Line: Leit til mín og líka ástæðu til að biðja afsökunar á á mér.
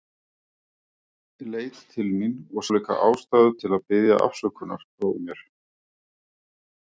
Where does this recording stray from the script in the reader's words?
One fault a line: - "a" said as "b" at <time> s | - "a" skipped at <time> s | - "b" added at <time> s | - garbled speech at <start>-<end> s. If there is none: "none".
none